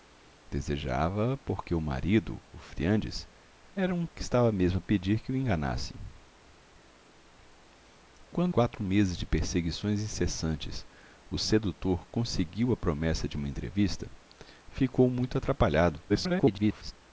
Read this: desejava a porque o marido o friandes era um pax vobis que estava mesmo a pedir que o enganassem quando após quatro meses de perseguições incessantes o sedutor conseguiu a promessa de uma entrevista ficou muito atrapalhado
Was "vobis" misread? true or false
true